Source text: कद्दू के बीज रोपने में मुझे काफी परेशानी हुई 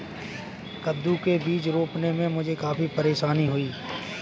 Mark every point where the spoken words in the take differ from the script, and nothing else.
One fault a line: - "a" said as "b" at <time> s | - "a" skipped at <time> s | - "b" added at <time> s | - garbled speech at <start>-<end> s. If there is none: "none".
none